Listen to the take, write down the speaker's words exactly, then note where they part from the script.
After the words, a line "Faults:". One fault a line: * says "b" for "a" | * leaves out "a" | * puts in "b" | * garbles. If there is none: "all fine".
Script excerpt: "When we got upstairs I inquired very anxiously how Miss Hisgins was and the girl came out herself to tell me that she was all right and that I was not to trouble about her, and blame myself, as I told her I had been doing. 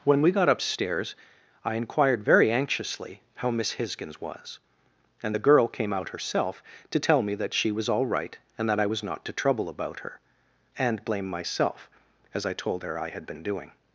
"When we got upstairs I inquired very anxiously how Miss Hisgins was and the girl came out herself to tell me that she was all right and that I was not to trouble about her, and blame myself, as I told her I had been doing.
Faults:
all fine